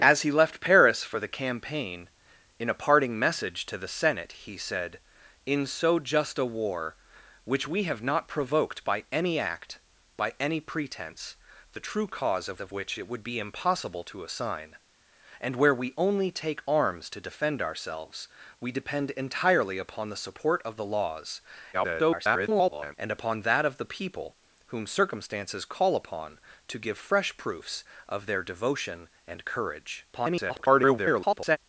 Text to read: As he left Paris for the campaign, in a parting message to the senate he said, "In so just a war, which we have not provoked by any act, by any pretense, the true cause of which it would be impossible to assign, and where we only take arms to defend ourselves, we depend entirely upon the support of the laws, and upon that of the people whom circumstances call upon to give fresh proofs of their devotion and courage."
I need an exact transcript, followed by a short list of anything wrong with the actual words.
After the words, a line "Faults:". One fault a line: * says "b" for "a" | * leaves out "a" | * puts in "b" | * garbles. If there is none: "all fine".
As he left Paris for the campaign, in a parting message to the senate he said, "In so just a war, which we have not provoked by any act, by any pretense, the true cause of of which it would be impossible to assign, and where we only take arms to defend ourselves, we depend entirely upon the support of the laws, [garbled] and upon that of the people whom circumstances call upon to give fresh proofs of their devotion and courage." [garbled]
Faults:
* puts in "of"
* garbles
* garbles